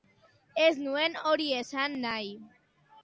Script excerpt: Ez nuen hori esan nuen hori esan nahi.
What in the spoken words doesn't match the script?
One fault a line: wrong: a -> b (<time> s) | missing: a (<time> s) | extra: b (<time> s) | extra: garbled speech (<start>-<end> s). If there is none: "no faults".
missing: nuen hori esan (2.0 s)